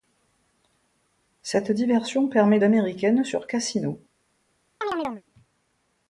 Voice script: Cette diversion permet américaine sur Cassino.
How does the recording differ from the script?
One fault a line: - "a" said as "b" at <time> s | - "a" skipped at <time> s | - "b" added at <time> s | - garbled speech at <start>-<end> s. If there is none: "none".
none